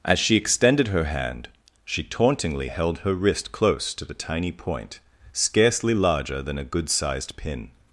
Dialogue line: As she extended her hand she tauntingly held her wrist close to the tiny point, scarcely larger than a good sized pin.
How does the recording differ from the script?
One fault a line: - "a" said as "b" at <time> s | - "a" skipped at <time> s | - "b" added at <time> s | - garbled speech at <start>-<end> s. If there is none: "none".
none